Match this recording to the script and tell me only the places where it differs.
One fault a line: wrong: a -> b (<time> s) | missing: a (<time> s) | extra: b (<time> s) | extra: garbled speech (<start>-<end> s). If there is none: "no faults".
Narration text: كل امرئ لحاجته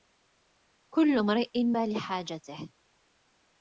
no faults